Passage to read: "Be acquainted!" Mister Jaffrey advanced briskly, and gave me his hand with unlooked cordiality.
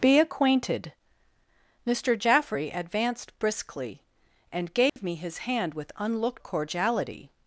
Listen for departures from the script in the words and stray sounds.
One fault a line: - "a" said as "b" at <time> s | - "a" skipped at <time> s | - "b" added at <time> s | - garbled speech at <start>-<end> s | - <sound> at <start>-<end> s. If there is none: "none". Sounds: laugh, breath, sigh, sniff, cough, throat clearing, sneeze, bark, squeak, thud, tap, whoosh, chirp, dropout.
- dropout at 4.9-5.0 s